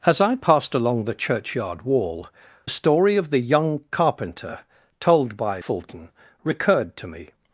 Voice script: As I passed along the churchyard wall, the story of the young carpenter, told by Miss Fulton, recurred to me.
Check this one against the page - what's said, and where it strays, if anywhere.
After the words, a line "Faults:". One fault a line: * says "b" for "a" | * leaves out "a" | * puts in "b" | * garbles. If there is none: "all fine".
As I passed along the churchyard wall, story of the young carpenter, told by Fulton, recurred to me.
Faults:
* leaves out "the"
* leaves out "Miss"